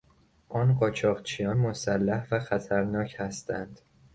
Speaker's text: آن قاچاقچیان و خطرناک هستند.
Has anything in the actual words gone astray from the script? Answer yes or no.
yes